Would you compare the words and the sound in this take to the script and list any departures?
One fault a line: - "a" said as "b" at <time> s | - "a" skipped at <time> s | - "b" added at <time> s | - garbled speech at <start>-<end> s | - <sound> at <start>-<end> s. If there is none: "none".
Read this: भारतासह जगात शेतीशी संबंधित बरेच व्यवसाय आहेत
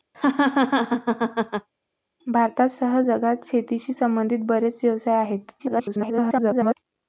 - laugh at 0.1-1.7 s
- garbled speech at 5.6-6.7 s